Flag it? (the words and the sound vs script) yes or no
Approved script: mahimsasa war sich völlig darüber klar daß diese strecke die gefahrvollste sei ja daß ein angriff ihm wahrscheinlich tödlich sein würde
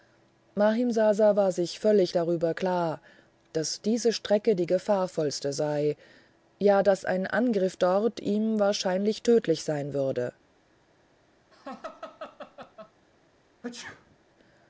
yes